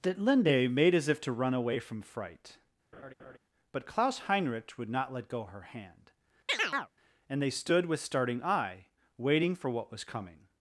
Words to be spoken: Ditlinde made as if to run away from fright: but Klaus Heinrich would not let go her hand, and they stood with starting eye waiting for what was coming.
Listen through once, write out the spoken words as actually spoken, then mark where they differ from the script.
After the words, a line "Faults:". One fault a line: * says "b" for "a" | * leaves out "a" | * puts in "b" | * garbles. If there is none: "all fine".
Ditlinde made as if to run away from fright: but Klaus Heinrich would not let go her hand, and they stood with starting eye waiting for what was coming.
Faults:
all fine